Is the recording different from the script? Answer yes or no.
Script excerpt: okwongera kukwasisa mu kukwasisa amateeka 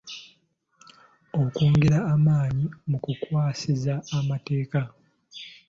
yes